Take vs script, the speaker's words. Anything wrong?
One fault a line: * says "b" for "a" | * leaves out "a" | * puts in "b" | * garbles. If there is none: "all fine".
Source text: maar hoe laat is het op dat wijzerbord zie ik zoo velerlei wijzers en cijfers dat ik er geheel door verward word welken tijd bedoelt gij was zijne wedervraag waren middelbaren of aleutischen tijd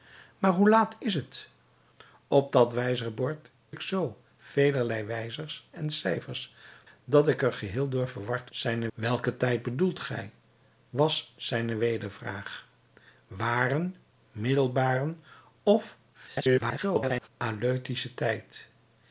* leaves out "zie"
* says "zijne" for "word"
* garbles